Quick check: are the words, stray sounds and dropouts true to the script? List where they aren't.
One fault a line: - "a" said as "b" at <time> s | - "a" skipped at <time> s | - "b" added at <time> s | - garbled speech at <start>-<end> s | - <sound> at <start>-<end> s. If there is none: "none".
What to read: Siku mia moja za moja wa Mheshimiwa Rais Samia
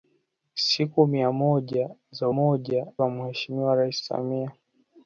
none